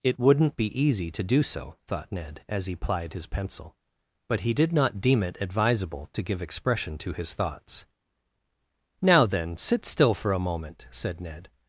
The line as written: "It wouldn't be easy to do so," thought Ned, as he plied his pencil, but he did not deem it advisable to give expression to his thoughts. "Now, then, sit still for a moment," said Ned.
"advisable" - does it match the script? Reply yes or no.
yes